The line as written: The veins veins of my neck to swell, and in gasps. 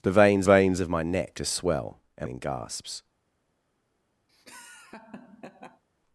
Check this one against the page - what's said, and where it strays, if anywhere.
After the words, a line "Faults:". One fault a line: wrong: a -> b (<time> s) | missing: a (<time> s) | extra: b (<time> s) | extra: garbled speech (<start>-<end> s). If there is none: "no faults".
The veins veins of my neck to swell, and in gasps.
Faults:
no faults